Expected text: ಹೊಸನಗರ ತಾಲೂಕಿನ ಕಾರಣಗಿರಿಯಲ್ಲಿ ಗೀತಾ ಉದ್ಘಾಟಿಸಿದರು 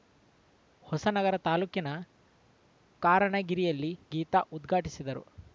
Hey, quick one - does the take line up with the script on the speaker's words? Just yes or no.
yes